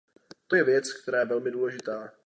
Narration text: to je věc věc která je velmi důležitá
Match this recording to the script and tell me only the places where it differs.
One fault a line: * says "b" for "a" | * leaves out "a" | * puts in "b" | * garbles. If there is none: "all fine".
* leaves out "věc"